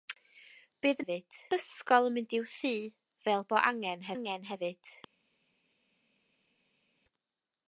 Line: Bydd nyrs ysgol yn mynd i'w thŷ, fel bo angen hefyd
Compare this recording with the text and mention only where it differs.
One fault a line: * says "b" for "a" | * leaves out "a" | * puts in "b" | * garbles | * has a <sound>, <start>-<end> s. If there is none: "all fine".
* says "hefyd" for "nyrs"
* puts in "angen"